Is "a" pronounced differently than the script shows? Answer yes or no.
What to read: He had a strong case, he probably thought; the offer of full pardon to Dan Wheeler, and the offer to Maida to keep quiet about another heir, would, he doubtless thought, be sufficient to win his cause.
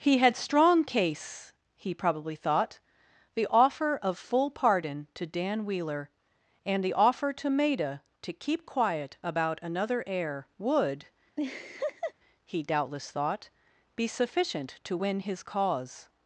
yes